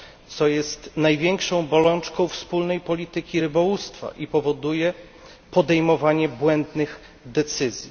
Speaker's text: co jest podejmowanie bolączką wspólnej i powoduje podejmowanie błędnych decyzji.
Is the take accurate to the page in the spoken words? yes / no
no